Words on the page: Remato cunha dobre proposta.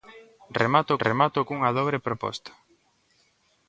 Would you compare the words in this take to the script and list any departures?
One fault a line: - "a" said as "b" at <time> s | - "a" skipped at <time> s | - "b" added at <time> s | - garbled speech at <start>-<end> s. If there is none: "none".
- "remato" added at 1.1 s